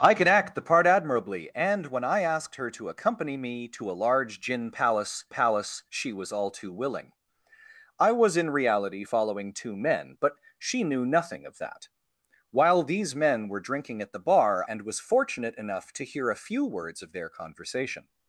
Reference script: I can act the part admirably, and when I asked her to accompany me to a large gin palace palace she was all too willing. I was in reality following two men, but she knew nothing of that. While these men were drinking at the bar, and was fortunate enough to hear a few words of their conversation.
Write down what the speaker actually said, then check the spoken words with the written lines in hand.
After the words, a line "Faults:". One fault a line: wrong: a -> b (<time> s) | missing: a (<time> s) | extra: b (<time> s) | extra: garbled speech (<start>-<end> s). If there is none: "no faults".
I can act the part admirably, and when I asked her to accompany me to a large gin palace palace she was all too willing. I was in reality following two men, but she knew nothing of that. While these men were drinking at the bar, and was fortunate enough to hear a few words of their conversation.
Faults:
no faults